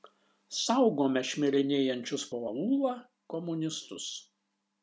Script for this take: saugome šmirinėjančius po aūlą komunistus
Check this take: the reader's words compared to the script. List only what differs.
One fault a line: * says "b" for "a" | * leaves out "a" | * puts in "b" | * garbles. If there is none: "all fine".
all fine